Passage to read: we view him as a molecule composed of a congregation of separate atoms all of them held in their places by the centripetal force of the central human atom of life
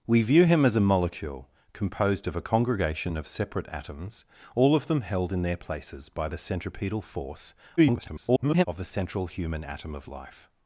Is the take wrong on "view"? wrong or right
right